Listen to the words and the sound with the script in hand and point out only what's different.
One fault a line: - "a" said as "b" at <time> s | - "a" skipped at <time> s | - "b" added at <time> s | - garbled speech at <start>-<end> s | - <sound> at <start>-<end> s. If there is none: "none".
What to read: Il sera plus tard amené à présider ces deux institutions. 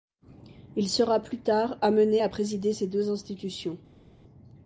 none